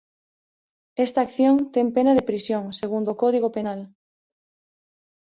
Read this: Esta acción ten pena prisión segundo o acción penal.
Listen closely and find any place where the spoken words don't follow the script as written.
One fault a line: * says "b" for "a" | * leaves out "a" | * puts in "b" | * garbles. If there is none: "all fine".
* puts in "de"
* says "código" for "acción"